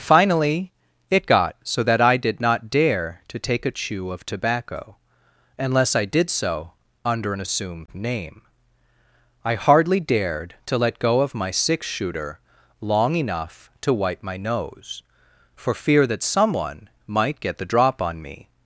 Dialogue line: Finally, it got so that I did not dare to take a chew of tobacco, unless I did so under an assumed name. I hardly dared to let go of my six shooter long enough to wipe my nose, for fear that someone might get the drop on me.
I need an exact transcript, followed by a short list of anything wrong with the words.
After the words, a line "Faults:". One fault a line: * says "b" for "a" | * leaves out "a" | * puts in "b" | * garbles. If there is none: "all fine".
Finally, it got so that I did not dare to take a chew of tobacco, unless I did so under an assumed name. I hardly dared to let go of my six shooter long enough to wipe my nose, for fear that someone might get the drop on me.
Faults:
all fine